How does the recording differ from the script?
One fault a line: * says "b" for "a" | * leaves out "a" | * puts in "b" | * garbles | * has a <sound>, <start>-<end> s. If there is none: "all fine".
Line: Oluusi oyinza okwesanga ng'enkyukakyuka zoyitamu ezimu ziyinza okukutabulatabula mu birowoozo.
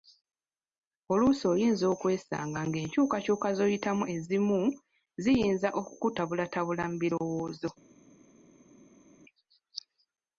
all fine